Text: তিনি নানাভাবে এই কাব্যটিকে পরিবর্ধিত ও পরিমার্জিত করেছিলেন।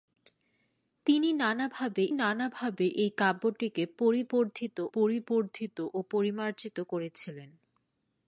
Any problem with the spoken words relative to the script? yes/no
yes